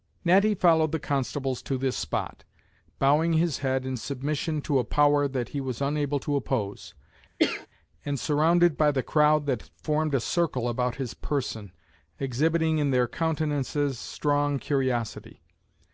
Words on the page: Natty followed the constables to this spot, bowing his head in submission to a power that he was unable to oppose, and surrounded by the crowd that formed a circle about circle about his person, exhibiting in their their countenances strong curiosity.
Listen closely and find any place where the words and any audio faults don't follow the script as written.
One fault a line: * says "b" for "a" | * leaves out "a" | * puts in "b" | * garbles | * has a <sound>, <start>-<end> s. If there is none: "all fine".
* has a cough, 7.4-7.7 s
* leaves out "circle about"
* leaves out "their"